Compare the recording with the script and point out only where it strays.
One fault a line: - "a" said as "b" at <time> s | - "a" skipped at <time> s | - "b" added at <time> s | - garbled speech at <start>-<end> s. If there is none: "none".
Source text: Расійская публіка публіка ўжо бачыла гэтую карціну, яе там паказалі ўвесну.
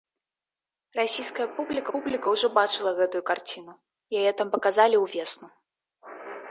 none